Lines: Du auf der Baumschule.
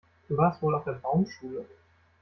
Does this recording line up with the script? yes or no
no